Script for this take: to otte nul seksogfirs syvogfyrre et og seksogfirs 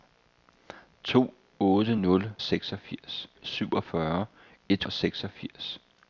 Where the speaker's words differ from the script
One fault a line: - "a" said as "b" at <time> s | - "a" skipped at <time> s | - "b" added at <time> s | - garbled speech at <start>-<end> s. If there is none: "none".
none